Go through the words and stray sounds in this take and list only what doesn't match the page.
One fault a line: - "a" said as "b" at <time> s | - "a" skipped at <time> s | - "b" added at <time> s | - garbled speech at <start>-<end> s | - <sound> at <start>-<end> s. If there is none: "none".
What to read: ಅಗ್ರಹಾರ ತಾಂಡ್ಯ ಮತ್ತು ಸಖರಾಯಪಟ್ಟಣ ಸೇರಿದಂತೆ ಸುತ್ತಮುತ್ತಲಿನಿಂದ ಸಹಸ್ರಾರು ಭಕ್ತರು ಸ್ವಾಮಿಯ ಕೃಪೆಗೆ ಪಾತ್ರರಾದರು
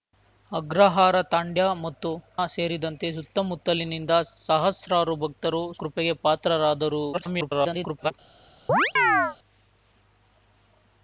- "ಸಖರಾಯಪಟ್ಟಣ" skipped at 2.1 s
- "ಸ್ವಾಮಿಯ" skipped at 5.6 s
- garbled speech at 7.1-8.1 s
- chirp at 8.7-9.4 s